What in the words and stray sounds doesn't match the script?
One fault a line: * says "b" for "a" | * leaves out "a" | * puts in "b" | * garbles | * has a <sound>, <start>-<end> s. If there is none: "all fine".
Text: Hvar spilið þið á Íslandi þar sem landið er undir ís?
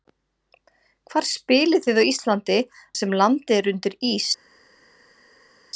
* leaves out "þar"